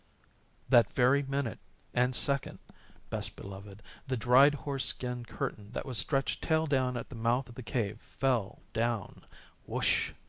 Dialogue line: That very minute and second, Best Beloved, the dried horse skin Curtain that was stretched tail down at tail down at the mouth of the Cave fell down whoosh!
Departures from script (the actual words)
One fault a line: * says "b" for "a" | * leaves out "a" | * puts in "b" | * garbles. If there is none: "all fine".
* leaves out "tail down at"